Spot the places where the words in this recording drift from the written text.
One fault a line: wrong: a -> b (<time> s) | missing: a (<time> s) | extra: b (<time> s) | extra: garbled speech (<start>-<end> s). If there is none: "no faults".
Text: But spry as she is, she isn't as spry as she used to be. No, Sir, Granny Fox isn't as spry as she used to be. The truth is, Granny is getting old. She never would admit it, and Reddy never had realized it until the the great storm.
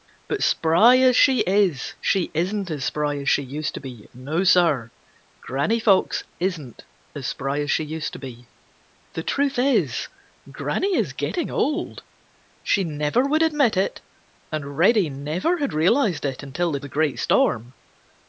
no faults